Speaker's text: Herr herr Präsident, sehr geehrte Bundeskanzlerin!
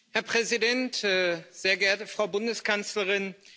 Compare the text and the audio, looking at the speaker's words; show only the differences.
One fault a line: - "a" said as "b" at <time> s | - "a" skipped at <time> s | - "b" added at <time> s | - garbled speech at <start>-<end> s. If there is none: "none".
- "herr" skipped at 0.2 s
- "Frau" added at 2.1 s